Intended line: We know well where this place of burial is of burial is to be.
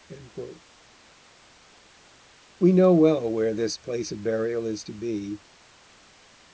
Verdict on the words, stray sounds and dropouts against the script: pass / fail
fail